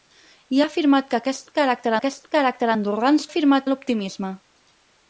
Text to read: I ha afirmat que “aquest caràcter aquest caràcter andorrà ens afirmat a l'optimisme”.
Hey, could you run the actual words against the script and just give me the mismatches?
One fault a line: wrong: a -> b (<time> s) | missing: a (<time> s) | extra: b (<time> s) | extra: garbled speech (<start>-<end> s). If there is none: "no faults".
no faults